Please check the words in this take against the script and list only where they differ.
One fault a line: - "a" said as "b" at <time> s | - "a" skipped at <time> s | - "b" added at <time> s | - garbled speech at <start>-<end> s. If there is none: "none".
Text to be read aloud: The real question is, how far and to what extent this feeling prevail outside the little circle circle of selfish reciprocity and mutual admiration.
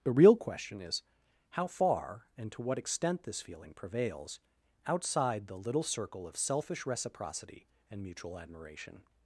- "prevail" said as "prevails" at 3.7 s
- "circle" skipped at 6.3 s